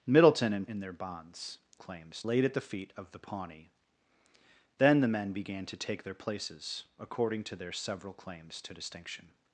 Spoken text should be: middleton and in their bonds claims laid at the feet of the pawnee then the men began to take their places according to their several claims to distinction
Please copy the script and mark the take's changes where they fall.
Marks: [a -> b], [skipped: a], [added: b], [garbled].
middleton and in their bonds claims laid at the feet of the pawnee then the men began to take their places according to their several claims to distinction